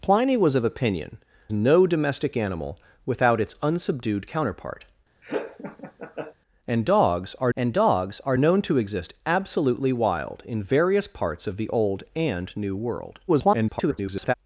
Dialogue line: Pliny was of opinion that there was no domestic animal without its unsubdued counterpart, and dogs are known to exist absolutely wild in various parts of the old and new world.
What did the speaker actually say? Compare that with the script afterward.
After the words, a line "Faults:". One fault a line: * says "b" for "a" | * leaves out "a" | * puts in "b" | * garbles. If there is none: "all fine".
Pliny was of opinion no domestic animal without its unsubdued counterpart, and dogs are and dogs are known to exist absolutely wild in various parts of the old and new world. [garbled]
Faults:
* leaves out "that there was"
* puts in "and dogs are"
* garbles